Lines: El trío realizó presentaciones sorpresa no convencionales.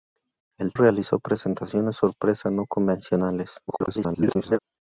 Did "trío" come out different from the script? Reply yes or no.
yes